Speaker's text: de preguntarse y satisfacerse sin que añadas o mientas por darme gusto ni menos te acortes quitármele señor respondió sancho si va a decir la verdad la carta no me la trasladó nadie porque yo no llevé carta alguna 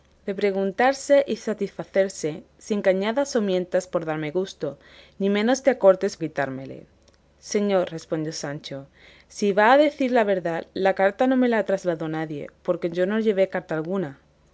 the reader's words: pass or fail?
pass